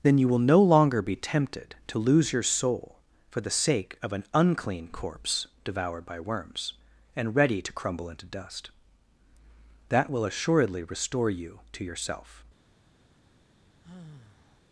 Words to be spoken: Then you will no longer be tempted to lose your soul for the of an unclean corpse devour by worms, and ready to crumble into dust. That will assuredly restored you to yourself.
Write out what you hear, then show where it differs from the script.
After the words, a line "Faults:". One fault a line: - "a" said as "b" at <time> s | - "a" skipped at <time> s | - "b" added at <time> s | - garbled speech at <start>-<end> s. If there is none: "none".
Then you will no longer be tempted to lose your soul for the sake of an unclean corpse devoured by worms, and ready to crumble into dust. That will assuredly restore you to yourself.
Faults:
- "sake" added at 3.5 s
- "devour" said as "devoured" at 5.6 s
- "restored" said as "restore" at 10.8 s